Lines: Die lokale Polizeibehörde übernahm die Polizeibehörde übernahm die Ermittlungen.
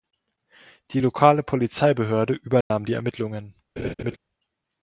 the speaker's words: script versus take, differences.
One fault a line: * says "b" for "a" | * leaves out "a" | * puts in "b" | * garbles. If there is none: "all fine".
* leaves out "Polizeibehörde übernahm die"